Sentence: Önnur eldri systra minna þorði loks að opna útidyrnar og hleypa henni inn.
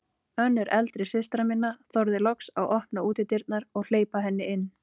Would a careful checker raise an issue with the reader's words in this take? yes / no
no